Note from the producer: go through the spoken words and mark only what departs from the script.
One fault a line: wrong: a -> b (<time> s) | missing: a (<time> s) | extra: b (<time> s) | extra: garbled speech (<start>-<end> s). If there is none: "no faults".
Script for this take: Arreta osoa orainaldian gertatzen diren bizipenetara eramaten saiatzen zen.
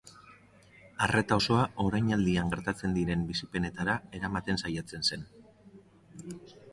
no faults